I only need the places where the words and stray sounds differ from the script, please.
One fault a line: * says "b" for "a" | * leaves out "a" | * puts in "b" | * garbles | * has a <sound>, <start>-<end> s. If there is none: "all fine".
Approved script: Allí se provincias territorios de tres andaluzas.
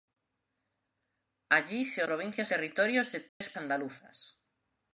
* has a dropout, 3.3-3.4 s